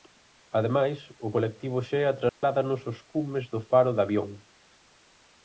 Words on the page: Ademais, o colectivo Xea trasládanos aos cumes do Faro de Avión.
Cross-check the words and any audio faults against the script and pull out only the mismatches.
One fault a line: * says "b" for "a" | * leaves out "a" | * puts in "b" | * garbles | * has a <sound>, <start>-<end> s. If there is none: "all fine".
* has a dropout, 2.3-2.4 s